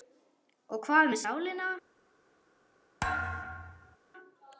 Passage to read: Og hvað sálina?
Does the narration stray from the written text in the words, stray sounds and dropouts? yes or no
yes